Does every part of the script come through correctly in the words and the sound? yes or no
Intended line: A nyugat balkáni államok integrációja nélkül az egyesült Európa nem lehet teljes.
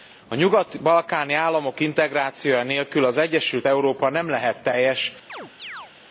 no